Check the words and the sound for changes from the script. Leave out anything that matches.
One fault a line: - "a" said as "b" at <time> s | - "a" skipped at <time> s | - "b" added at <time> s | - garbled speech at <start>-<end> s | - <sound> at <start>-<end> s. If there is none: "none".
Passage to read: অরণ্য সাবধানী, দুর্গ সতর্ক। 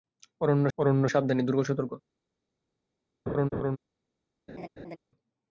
- "অরণ্য" added at 0.8 s
- laugh at 3.3-3.8 s
- laugh at 4.5-5.0 s